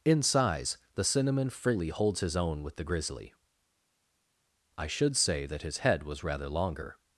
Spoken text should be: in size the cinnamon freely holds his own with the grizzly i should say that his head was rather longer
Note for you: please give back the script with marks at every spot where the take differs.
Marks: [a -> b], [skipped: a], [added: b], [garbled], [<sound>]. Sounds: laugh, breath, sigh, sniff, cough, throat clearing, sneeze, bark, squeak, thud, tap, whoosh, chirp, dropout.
in size the cinnamon freely holds his own with the grizzly i should say that his head was rather longer